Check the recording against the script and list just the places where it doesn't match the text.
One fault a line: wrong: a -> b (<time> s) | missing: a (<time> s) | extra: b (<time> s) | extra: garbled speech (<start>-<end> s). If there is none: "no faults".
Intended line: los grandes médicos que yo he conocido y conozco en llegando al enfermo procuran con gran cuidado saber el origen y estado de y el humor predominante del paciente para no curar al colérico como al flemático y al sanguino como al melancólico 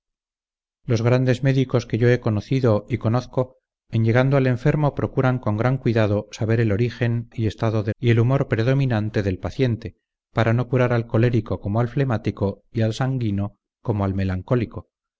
no faults